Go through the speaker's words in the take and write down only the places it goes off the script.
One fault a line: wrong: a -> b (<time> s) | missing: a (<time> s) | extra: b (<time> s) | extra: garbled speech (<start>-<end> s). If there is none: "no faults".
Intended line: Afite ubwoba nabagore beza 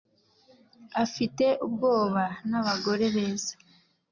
no faults